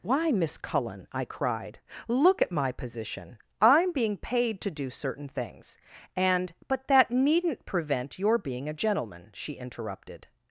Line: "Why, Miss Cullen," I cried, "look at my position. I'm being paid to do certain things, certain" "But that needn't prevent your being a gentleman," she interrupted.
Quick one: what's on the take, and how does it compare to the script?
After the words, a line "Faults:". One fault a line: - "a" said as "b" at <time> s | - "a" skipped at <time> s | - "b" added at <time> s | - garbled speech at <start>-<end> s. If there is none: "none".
"Why, Miss Cullen," I cried, "look at my position. I'm being paid to do certain things, and" "But that needn't prevent your being a gentleman," she interrupted.
Faults:
- "certain" said as "and" at 6.2 s